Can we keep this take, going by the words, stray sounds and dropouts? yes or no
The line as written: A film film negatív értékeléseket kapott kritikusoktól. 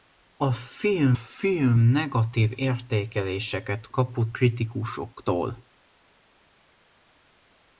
yes